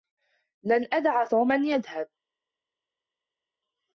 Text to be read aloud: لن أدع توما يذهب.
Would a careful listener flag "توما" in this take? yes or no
no